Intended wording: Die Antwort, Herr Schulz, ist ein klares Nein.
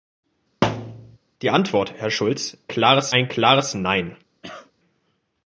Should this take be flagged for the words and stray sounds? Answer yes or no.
yes